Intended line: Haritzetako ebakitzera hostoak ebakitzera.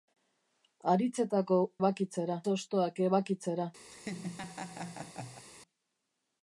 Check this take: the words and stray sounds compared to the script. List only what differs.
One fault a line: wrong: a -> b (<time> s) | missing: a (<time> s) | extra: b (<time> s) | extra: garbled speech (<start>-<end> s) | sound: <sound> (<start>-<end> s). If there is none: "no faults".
sound: laugh (3.9-5.4 s)